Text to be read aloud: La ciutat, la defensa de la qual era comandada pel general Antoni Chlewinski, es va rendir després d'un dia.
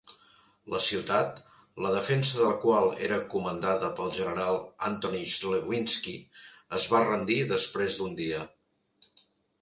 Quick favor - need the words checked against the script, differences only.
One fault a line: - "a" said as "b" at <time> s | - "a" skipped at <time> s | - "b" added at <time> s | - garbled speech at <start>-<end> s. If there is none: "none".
none